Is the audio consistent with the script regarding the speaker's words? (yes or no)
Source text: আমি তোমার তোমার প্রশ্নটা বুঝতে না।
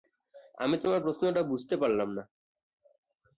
no